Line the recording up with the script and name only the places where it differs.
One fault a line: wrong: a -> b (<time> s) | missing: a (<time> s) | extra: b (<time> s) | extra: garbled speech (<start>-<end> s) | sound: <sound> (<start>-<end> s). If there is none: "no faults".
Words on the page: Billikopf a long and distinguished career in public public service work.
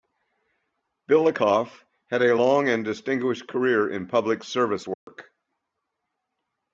extra: had (2.1 s)
missing: public (4.4 s)
sound: dropout (4.9-5.1 s)